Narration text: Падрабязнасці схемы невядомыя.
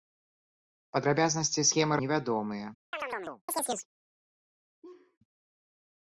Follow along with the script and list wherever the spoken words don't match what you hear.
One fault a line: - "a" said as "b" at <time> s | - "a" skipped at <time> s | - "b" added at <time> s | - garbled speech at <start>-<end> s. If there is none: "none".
none